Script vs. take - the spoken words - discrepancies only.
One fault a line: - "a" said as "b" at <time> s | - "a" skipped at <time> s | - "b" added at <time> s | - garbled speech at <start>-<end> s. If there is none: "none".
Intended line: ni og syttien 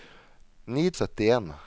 none